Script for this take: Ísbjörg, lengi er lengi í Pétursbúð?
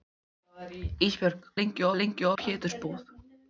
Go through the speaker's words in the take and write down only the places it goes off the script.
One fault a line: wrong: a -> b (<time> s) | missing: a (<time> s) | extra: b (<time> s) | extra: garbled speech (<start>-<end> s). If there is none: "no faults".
no faults